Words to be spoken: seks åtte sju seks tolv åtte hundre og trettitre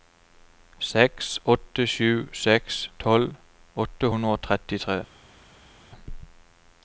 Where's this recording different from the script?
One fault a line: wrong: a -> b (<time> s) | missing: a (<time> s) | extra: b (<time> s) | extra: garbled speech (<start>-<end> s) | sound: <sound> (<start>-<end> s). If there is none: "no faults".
no faults